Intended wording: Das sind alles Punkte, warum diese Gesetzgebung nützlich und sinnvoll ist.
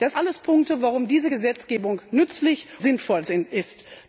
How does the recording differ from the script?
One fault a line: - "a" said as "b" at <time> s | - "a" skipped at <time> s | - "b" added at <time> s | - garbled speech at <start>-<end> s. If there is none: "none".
- "sind" skipped at 0.1 s
- "und" skipped at 2.7 s